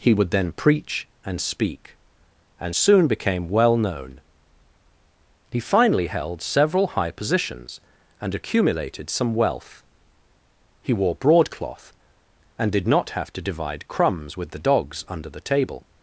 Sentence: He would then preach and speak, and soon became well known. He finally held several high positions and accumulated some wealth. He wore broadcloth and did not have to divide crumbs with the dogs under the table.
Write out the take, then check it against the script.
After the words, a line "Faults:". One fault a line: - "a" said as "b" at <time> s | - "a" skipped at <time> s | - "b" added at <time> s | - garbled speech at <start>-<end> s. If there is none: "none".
He would then preach and speak, and soon became well known. He finally held several high positions and accumulated some wealth. He wore broadcloth and did not have to divide crumbs with the dogs under the table.
Faults:
none